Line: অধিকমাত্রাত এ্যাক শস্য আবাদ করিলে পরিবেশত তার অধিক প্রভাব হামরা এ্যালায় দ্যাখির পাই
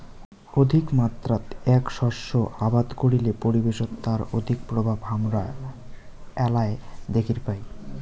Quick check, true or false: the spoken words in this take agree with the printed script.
true